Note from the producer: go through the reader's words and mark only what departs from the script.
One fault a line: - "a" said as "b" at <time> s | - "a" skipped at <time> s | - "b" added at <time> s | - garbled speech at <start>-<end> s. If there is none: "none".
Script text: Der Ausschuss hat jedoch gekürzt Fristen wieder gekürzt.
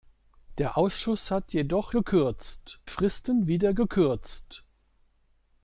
none